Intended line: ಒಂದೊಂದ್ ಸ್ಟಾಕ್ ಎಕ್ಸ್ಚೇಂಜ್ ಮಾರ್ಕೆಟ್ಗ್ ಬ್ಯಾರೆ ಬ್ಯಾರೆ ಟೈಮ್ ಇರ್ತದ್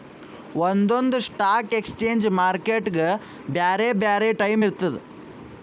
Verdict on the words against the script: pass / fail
pass